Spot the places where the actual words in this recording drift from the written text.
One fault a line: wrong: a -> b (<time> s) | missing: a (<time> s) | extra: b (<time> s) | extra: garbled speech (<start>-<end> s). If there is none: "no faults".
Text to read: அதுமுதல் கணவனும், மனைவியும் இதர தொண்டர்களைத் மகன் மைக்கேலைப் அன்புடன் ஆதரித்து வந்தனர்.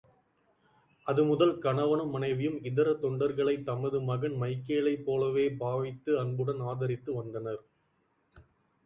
extra: தமது (3.7 s)
extra: போலவே பாவித்து (5.0 s)